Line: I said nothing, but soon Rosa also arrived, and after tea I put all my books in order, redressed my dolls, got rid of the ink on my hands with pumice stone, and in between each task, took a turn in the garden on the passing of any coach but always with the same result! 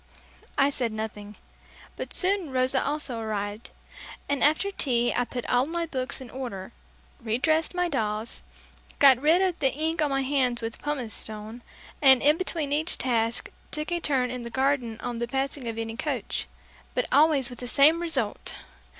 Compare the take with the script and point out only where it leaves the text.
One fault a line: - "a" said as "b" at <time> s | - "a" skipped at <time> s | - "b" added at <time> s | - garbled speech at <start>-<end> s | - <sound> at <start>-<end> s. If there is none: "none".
none